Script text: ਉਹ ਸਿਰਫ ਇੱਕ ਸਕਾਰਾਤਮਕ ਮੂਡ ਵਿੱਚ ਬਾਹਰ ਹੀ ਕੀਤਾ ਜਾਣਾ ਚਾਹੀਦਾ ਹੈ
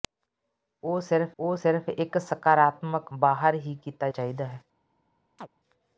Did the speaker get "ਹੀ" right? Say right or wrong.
right